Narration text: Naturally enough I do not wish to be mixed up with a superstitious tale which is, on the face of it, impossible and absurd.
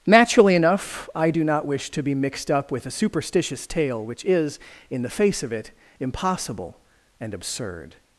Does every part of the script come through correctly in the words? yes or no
no